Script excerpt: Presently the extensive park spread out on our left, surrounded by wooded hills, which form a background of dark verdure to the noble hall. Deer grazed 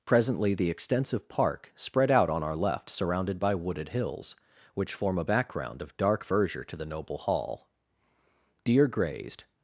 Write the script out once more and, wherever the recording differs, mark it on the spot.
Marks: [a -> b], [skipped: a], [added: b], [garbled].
Presently the extensive park spread out on our left, surrounded by wooded hills, which form a background of dark verdure to the noble hall. Deer grazed